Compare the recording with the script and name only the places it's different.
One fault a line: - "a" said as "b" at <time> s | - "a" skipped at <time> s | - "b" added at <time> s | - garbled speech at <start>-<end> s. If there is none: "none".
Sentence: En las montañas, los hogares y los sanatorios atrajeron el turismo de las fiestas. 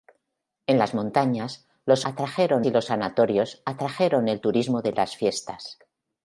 - "hogares" said as "atrajeron" at 2.0 s